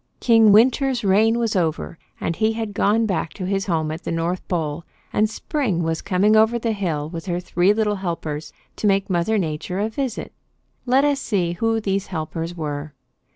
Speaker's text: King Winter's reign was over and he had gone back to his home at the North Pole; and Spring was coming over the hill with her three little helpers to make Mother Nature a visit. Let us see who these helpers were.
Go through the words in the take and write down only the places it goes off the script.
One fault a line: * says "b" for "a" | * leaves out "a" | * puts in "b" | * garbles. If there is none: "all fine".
all fine